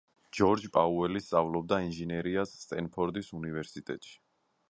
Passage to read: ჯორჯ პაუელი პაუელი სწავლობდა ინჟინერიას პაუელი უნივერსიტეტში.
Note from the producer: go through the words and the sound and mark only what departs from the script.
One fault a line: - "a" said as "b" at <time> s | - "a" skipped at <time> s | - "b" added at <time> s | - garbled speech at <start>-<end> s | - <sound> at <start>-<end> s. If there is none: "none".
- "პაუელი" skipped at 1.2 s
- "პაუელი" said as "სტენფორდის" at 2.7 s